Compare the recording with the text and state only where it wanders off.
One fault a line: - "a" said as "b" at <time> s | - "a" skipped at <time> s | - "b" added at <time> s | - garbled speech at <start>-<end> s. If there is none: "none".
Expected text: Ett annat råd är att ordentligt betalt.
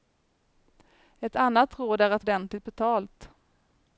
none